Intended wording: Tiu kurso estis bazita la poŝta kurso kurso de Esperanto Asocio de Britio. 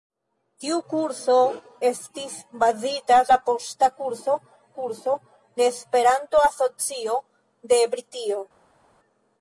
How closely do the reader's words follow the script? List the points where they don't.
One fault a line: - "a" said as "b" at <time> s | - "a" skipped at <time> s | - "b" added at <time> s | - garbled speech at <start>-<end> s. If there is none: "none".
none